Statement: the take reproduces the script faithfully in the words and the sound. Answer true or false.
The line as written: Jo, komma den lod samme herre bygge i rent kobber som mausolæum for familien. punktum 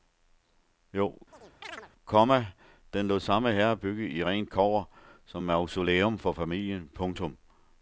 false